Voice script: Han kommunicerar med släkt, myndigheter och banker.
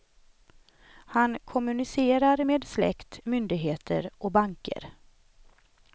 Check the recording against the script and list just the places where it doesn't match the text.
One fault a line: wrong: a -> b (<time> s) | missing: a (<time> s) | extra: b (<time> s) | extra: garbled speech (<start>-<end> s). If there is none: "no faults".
no faults